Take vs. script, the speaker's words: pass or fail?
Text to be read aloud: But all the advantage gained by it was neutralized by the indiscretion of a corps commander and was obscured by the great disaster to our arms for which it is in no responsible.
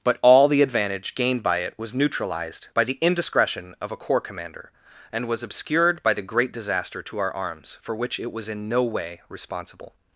fail